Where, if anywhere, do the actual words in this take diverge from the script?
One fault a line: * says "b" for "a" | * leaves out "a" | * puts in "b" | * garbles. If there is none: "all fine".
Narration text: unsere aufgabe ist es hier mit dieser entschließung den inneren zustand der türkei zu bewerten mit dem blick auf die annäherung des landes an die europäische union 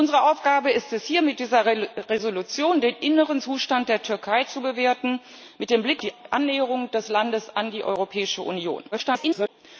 * leaves out "auf"
* garbles